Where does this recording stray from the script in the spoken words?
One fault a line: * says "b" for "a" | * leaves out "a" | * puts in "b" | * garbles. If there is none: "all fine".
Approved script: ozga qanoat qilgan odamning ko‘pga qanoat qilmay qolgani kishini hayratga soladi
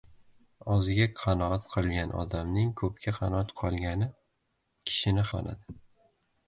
* leaves out "qilmay"
* leaves out "hayratga"